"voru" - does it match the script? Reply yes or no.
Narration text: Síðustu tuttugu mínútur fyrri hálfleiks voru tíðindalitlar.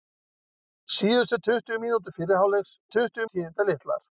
no